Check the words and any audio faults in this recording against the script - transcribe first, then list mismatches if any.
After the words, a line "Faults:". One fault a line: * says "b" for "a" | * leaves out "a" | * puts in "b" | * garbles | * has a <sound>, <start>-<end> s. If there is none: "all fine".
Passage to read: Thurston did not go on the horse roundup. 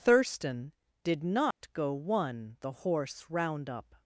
Thurston did not go one the horse roundup.
Faults:
* has a dropout, 1.5-1.6 s
* says "one" for "on"